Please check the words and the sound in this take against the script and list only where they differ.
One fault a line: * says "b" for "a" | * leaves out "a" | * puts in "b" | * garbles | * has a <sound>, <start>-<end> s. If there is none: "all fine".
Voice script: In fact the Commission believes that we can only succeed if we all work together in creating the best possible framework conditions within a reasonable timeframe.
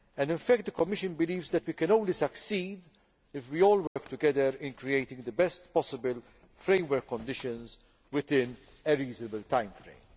* has a dropout, 3.9-4.0 s